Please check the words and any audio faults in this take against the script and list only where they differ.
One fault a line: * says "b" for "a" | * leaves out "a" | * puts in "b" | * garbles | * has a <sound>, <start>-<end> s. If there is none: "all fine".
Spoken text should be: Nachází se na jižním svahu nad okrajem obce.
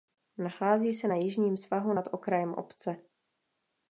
all fine